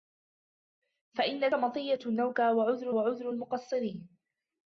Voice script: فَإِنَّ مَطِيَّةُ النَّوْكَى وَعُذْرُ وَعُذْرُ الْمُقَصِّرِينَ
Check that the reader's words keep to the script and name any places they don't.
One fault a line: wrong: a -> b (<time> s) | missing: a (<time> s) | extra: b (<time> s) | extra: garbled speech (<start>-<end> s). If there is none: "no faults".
no faults